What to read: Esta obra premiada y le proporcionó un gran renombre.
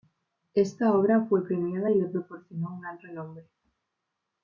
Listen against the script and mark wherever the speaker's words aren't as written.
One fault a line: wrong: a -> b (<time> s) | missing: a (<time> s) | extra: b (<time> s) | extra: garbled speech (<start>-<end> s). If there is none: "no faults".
extra: fue (1.3 s)